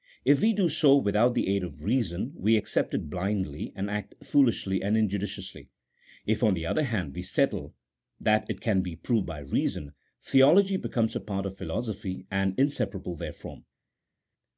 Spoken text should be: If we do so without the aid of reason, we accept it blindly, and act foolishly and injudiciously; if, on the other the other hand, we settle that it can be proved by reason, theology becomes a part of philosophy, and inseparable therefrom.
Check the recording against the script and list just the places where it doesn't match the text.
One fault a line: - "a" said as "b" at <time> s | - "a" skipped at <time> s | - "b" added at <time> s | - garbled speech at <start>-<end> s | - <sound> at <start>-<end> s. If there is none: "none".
- "the other" skipped at 6.8 s